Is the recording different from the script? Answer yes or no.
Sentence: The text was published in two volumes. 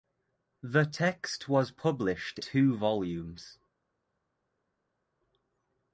yes